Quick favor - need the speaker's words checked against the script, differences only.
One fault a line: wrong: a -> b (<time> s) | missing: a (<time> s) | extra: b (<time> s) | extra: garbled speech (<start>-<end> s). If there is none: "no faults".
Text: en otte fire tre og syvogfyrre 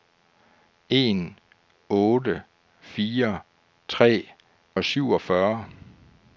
no faults